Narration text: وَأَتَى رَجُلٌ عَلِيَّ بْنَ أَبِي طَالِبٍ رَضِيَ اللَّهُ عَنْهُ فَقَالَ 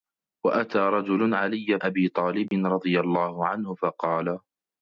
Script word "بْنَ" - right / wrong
wrong